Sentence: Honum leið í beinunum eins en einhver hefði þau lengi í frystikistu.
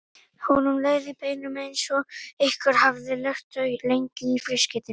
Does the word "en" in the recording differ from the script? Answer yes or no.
yes